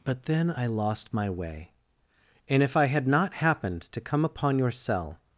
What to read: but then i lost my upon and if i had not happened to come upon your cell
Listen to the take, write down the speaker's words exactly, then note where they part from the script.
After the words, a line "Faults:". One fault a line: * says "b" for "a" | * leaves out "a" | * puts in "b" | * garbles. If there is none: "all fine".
but then i lost my way and if i had not happened to come upon your cell
Faults:
* says "way" for "upon"